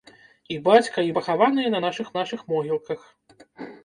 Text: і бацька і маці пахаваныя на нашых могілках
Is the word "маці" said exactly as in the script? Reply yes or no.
no